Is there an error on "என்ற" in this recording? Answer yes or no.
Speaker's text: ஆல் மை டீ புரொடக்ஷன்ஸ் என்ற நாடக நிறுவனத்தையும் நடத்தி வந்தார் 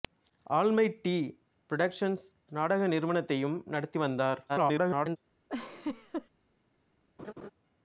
yes